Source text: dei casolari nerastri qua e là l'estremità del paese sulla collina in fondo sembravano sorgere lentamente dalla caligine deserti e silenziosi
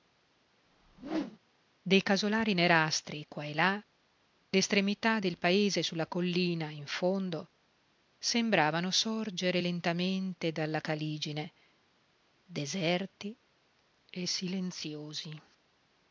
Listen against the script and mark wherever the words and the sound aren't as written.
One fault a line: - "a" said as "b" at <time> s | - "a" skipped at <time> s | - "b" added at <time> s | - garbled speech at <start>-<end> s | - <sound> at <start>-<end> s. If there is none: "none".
- whoosh at 0.6-1.4 s